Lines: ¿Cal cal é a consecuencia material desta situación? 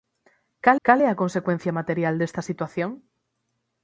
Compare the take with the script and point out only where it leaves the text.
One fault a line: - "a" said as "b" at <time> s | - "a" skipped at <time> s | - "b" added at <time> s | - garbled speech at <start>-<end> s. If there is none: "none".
none